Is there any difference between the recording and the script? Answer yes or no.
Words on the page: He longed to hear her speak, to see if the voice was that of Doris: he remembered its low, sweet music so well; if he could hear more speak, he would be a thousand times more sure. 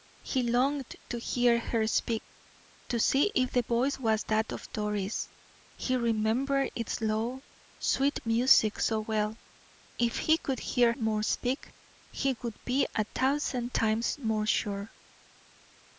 no